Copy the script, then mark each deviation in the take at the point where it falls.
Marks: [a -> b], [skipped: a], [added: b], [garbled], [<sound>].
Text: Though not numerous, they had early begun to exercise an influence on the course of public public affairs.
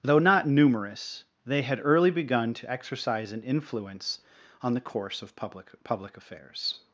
Though not numerous, they had early begun to exercise an influence on the course of public public affairs.